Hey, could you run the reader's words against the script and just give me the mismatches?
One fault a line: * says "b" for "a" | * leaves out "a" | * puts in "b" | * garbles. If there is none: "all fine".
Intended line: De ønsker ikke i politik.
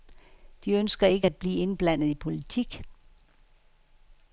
* puts in "at blive indblandet"